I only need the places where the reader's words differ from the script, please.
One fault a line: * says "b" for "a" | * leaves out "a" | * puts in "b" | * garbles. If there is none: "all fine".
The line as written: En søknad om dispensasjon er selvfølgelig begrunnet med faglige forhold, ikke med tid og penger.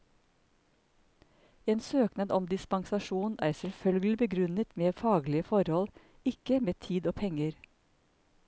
all fine